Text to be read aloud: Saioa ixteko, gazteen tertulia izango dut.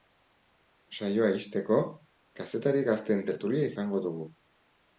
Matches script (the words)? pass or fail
fail